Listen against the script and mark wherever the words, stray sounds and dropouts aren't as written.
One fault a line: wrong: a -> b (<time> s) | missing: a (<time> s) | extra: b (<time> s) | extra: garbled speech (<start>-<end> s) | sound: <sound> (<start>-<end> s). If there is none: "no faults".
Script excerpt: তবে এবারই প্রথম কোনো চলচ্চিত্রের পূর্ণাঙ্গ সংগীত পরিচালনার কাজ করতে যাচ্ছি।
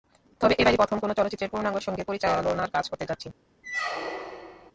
sound: squeak (3.6-4.7 s)